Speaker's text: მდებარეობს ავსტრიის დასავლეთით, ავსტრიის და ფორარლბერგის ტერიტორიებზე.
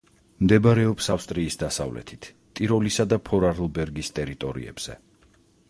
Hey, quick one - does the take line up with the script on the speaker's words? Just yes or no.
no